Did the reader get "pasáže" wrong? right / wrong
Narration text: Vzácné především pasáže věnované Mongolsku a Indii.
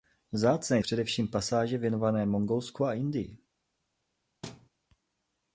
right